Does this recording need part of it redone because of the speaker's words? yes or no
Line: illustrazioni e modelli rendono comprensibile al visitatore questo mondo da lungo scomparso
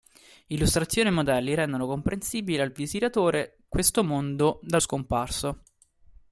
yes